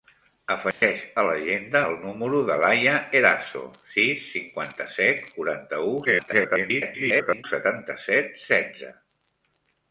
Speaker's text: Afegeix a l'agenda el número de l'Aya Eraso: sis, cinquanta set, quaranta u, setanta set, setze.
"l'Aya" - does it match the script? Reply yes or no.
yes